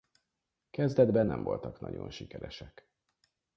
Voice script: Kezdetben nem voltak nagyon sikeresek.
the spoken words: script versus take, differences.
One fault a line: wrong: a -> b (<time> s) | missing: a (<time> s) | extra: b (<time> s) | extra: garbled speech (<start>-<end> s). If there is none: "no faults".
no faults